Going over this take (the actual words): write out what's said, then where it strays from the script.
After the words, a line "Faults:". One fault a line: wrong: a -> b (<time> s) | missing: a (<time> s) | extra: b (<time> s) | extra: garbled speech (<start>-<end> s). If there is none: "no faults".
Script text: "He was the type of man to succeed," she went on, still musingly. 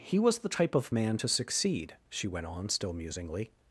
"He was the type of man to succeed," she went on, still musingly.
Faults:
no faults